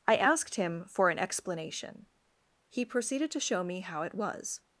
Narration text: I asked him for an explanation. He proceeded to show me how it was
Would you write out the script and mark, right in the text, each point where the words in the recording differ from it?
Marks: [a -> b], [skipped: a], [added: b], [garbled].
I asked him for an explanation. He proceeded to show me how it was